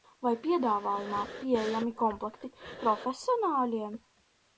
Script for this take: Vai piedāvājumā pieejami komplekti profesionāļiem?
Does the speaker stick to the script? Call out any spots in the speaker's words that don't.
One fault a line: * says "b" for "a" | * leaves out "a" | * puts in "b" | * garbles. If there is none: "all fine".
all fine